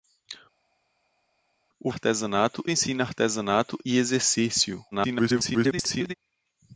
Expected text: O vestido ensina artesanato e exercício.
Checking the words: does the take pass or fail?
fail